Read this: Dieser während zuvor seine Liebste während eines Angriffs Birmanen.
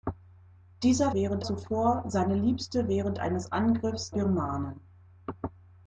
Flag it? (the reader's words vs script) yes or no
no